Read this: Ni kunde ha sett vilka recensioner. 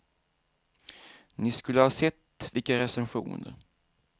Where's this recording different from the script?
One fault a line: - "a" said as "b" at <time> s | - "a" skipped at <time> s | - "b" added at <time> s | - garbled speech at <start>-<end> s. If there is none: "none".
- "kunde" said as "skulle" at 1.5 s